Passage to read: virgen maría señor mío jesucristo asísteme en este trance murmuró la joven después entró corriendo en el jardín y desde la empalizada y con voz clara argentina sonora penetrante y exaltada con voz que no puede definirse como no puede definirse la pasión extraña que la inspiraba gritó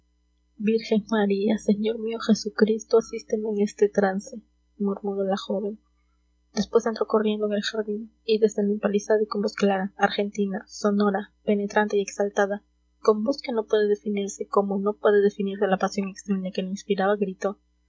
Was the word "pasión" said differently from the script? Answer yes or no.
no